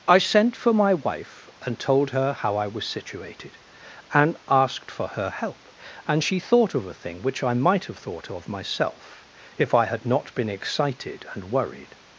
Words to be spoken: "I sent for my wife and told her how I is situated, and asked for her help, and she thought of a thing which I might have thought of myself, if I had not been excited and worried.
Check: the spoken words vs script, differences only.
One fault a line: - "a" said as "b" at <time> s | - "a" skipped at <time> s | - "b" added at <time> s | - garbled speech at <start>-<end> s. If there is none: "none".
- "is" said as "was" at 2.7 s